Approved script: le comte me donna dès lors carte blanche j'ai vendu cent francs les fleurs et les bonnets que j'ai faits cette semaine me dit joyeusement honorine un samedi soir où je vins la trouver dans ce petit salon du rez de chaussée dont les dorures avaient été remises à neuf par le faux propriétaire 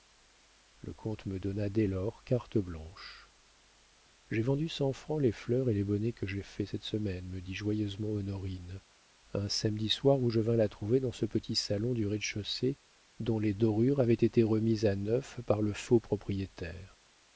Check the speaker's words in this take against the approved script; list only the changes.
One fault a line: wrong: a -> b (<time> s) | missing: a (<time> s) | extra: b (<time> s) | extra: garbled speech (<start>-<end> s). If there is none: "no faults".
no faults